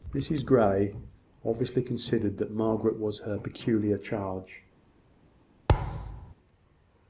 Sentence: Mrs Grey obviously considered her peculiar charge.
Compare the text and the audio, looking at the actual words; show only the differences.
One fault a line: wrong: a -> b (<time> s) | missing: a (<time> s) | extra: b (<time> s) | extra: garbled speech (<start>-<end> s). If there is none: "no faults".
extra: that Margaret was (2.4 s)